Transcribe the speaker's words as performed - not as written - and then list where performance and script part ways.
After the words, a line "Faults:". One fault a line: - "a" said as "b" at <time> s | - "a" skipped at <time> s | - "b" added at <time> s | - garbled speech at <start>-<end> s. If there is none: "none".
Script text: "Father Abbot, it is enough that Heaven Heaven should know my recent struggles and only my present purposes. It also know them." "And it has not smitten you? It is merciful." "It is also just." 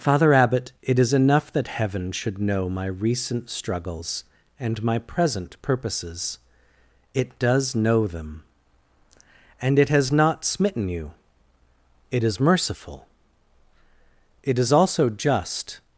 "Father Abbot, it is enough that Heaven should know my recent struggles and my present purposes. It does know them." "And it has not smitten you? It is merciful." "It is also just."
Faults:
- "Heaven" skipped at 2.1 s
- "only" skipped at 4.8 s
- "also" said as "does" at 7.4 s